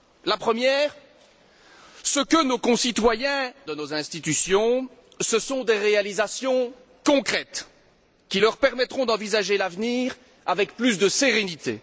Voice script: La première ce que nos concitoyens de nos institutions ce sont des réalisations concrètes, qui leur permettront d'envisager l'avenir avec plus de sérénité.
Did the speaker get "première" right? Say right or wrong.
right